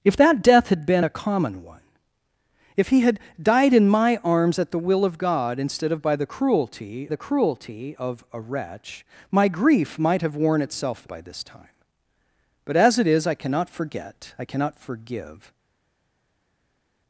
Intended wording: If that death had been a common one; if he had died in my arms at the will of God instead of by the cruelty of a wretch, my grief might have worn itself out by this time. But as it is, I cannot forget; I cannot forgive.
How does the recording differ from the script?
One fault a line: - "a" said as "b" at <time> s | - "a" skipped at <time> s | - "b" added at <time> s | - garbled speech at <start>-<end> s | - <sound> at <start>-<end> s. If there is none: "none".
- "the cruelty" added at 7.1 s
- "out" skipped at 11.1 s